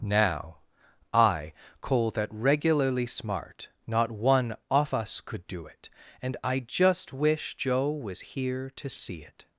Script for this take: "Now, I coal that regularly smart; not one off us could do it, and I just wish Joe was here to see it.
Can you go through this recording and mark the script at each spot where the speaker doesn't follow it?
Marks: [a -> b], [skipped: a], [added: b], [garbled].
"Now, I coal that regularly smart; not one off us could do it, and I just wish Joe was here to see it.